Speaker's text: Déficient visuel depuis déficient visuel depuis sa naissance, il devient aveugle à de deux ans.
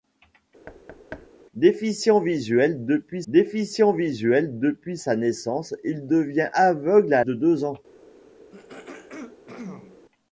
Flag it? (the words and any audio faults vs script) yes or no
yes